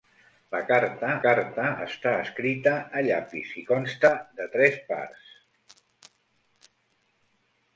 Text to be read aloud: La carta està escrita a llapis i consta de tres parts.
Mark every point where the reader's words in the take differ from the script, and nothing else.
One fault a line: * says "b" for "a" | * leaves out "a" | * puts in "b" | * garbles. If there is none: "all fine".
* puts in "carta"